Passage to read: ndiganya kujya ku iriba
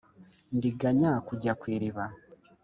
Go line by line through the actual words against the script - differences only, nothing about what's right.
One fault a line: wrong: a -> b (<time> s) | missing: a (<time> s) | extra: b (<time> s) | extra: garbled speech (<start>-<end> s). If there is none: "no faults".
no faults